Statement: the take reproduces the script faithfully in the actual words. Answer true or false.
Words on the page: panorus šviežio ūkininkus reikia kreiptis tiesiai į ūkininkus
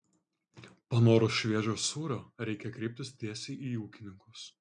false